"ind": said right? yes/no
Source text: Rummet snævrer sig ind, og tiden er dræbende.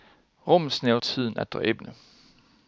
no